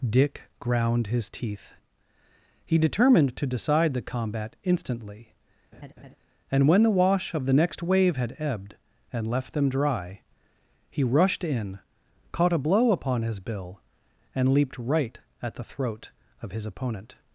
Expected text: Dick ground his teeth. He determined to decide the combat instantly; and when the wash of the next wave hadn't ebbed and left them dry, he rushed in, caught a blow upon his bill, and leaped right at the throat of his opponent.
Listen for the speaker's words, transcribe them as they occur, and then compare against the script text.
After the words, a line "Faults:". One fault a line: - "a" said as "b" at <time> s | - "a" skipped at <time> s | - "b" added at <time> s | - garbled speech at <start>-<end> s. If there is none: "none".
Dick ground his teeth. He determined to decide the combat instantly; and when the wash of the next wave had ebbed and left them dry, he rushed in, caught a blow upon his bill, and leaped right at the throat of his opponent.
Faults:
- "hadn't" said as "had" at 8.2 s